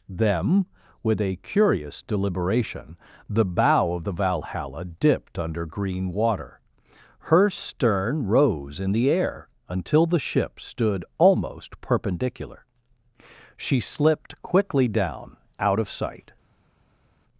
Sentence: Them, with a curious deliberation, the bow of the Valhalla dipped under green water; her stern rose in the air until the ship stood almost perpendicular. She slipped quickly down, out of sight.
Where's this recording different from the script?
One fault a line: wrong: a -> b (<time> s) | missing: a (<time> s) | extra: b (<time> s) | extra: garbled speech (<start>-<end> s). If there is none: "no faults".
no faults